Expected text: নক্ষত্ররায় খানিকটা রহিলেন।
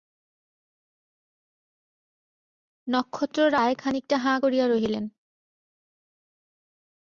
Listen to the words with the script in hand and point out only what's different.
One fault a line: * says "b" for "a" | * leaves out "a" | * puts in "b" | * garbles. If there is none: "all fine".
* puts in "হাঁ করিয়া"